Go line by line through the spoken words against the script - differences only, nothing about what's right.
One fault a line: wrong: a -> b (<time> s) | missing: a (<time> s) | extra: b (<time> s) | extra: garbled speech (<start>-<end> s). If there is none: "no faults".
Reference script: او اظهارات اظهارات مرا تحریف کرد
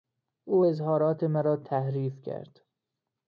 missing: اظهارات (1.2 s)